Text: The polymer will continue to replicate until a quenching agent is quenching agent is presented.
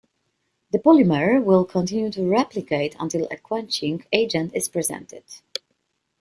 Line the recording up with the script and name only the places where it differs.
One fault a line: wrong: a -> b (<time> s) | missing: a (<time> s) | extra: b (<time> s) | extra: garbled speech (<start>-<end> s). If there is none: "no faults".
missing: quenching agent is (4.7 s)